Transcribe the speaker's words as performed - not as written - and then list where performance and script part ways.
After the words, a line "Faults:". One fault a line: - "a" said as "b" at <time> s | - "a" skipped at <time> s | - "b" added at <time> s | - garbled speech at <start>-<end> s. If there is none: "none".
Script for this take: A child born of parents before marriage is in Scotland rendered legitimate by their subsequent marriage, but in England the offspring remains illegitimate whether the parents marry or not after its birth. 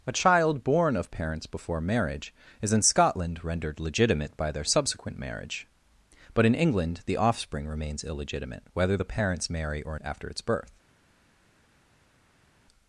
A child born of parents before marriage is in Scotland rendered legitimate by their subsequent marriage, but in England the offspring remains illegitimate whether the parents marry or after its birth.
Faults:
- "not" skipped at 10.0 s